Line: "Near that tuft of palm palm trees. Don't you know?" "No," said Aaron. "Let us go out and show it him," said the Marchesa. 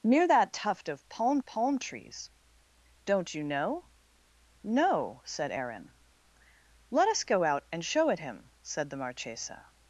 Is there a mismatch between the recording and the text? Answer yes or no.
no